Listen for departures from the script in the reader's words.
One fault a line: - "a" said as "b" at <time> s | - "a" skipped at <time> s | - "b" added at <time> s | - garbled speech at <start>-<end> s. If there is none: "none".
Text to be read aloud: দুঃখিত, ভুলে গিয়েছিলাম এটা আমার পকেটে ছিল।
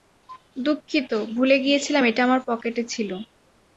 none